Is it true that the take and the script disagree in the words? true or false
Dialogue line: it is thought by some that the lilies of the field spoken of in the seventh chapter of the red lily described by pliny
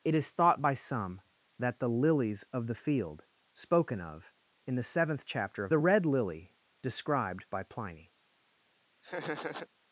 false